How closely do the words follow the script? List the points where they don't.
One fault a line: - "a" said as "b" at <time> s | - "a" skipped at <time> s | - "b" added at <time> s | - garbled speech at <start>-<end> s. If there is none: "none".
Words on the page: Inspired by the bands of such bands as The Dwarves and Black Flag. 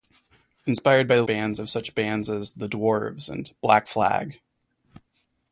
none